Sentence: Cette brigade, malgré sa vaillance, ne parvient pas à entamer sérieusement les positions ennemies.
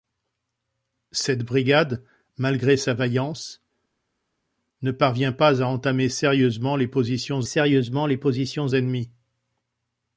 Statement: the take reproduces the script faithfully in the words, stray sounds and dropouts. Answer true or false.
false